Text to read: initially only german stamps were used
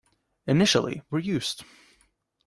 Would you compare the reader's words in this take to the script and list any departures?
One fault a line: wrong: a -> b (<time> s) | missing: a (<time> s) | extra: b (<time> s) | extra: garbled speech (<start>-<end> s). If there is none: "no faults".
missing: only german stamps (1.0 s)